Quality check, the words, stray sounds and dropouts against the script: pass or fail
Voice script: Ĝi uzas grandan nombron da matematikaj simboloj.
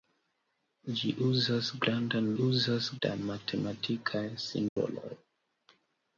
fail